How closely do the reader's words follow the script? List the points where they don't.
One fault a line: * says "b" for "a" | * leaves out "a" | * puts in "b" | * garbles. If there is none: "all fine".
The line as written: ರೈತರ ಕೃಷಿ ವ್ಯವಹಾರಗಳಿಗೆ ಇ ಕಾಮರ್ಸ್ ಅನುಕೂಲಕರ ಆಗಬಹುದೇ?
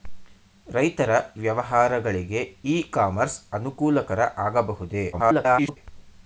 * leaves out "ಕೃಷಿ"
* garbles